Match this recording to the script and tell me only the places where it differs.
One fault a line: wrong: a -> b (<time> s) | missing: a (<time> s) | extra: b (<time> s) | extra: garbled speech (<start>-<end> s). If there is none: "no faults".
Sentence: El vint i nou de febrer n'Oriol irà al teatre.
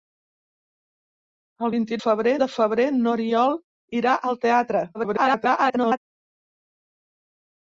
wrong: nou -> febrer (2.0 s)
extra: garbled speech (4.9-6.0 s)